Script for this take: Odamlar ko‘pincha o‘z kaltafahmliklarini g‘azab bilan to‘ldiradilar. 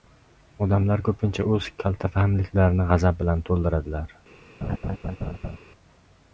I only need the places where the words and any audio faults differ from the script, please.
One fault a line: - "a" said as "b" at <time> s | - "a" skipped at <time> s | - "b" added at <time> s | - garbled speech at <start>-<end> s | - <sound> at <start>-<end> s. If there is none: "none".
- laugh at 4.6-5.6 s